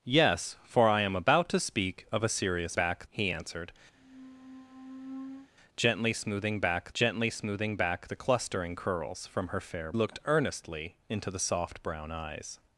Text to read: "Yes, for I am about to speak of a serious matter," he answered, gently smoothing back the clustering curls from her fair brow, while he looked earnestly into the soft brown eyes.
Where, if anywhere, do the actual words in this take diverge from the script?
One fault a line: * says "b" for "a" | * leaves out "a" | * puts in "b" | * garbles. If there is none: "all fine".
* says "back" for "matter"
* puts in "gently smoothing back"
* leaves out "brow while he"